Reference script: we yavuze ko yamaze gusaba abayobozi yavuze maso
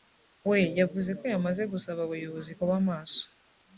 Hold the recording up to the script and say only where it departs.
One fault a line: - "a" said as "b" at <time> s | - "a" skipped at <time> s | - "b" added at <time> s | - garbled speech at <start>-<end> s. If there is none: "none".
- "yavuze" said as "kuba" at 2.6 s